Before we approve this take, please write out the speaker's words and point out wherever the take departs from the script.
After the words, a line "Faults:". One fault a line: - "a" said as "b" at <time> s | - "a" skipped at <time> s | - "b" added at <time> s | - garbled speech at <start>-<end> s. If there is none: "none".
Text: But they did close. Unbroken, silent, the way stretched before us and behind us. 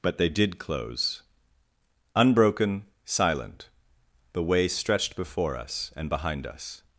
But they did close. Unbroken, silent, the way stretched before us and behind us.
Faults:
none